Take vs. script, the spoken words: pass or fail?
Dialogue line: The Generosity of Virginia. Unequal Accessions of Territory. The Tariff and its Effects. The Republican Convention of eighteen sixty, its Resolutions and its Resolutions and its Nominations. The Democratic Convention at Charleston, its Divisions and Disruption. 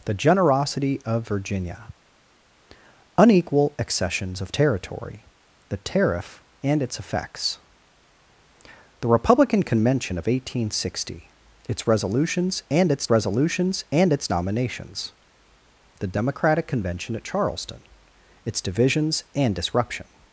pass